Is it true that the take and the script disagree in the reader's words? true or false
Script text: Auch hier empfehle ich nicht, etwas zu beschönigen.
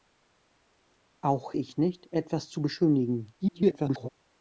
true